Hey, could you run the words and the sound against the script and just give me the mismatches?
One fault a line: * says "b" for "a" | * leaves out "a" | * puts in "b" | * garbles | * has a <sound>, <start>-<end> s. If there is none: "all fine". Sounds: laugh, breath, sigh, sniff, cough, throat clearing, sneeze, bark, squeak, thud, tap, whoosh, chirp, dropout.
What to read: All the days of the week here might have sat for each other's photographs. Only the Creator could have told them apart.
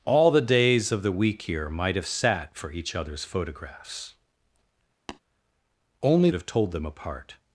* has a tap, 5.1-5.2 s
* leaves out "the Creator could"